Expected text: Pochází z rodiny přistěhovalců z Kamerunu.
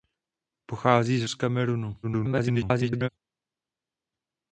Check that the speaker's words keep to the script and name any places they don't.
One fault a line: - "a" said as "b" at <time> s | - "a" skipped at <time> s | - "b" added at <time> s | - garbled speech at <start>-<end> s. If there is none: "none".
- "rodiny přistěhovalců" skipped at 1.3 s
- garbled speech at 2.0-3.1 s